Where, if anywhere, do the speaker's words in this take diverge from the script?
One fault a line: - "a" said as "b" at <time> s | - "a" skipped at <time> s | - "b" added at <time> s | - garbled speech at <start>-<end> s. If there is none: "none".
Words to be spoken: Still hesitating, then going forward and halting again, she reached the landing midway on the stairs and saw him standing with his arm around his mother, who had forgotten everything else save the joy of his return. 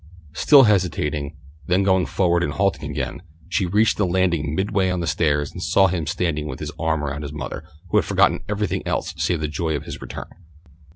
none